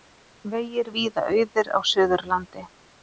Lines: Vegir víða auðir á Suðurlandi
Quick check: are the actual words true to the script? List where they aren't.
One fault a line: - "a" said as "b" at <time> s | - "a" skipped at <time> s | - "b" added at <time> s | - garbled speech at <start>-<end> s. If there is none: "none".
none